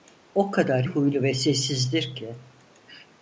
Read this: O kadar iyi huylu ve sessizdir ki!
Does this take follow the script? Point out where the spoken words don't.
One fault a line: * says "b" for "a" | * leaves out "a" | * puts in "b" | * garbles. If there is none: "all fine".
* leaves out "iyi"